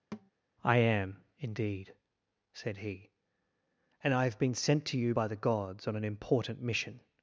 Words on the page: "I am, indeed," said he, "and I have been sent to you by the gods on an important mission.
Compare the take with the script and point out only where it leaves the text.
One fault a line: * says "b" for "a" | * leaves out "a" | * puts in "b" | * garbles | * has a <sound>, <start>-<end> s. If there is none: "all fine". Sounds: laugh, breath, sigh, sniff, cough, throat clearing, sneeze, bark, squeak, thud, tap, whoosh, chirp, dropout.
* has a thud, 0.1-0.3 s